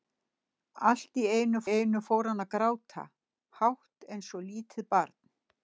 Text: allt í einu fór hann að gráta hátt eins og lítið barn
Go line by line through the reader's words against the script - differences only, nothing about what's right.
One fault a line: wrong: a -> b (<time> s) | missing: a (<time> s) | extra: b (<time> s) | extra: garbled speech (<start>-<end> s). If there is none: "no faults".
extra: einu (1.7 s)